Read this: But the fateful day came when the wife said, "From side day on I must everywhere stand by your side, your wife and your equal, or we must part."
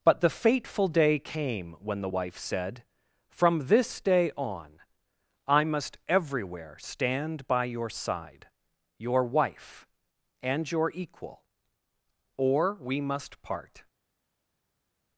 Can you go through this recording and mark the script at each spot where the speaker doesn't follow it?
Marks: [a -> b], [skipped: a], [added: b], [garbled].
But the fateful day came when the wife said, "From [side -> this] day on I must everywhere stand by your side, your wife and your equal, or we must part."